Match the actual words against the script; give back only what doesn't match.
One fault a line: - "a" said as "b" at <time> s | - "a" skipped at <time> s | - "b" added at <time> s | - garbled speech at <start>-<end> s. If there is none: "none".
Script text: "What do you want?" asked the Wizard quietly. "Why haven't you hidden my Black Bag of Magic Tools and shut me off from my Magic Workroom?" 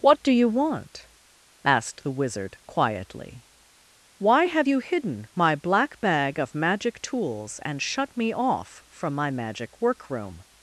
- "haven't" said as "have" at 4.5 s